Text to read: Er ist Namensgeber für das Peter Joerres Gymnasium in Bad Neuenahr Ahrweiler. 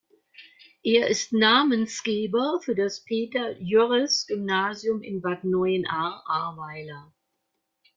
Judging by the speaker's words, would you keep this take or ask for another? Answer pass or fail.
pass